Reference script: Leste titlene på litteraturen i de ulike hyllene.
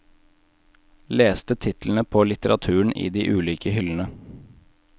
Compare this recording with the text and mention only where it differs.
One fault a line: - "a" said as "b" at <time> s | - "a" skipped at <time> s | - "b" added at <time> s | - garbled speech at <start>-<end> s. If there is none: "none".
none